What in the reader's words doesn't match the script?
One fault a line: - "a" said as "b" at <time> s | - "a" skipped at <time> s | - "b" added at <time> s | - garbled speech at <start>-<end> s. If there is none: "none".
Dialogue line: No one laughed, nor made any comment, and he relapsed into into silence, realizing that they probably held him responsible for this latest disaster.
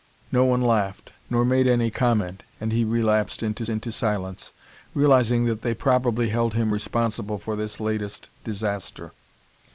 none